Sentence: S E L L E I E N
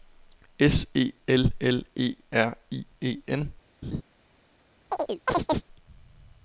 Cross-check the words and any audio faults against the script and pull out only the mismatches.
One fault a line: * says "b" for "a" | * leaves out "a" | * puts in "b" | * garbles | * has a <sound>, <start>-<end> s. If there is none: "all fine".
* puts in "R"
* has a laugh, 3.8-4.0 s
* has a chirp, 4.9-5.6 s